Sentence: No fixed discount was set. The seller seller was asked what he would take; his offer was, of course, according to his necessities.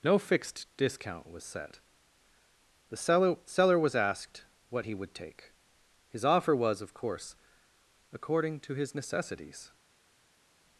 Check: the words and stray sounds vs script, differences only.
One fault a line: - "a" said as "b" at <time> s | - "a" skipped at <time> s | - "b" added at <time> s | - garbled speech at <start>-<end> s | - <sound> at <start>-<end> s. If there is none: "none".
none